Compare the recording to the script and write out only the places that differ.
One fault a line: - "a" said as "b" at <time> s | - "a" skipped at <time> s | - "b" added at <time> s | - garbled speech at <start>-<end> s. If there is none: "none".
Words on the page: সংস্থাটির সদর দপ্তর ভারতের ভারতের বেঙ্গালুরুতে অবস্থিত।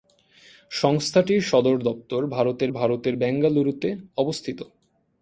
none